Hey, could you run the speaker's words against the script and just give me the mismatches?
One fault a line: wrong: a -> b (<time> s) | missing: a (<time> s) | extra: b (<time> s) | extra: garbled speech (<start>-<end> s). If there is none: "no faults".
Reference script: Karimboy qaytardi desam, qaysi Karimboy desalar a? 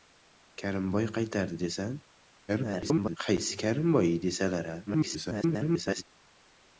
extra: garbled speech (2.5-3.2 s)
extra: garbled speech (4.9-6.0 s)